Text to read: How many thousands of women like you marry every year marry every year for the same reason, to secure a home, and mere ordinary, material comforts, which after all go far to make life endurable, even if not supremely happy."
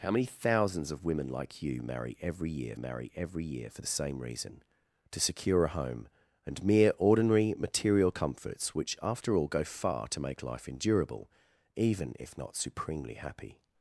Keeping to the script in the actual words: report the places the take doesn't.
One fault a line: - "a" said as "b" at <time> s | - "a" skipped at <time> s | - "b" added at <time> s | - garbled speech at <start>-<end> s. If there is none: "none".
none